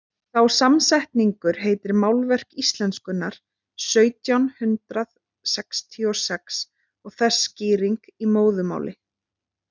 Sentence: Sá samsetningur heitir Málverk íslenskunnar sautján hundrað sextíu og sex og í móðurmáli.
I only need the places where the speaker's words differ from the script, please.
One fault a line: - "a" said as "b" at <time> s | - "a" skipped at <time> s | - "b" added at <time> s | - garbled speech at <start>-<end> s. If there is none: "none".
- "þess skýring" added at 7.2 s